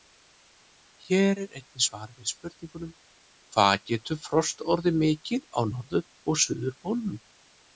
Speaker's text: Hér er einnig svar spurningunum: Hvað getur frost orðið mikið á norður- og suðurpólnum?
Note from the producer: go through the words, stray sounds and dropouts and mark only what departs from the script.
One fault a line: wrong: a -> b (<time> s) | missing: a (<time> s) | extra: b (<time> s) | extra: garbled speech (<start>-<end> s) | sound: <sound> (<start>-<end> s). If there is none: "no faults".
extra: við (2.2 s)